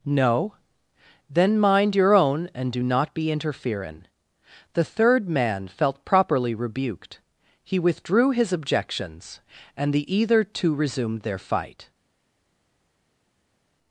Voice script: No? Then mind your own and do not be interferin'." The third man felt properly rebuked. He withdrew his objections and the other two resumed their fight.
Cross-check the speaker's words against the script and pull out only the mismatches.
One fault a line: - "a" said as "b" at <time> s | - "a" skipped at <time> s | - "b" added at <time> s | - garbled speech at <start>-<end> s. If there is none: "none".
- "other" said as "either" at 10.1 s